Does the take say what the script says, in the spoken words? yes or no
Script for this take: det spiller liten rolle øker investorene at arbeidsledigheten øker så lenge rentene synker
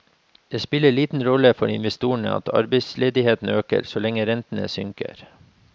no